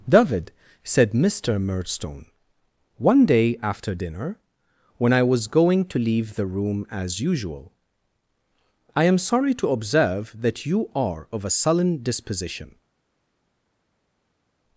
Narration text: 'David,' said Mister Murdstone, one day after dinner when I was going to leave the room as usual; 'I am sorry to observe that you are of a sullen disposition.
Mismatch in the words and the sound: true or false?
false